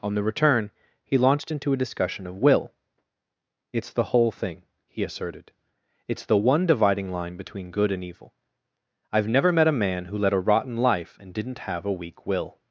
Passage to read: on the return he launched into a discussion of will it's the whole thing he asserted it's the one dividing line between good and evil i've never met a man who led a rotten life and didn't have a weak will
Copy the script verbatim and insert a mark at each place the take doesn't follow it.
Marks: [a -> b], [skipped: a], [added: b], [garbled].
on the return he launched into a discussion of will it's the whole thing he asserted it's the one dividing line between good and evil i've never met a man who led a rotten life and didn't have a weak will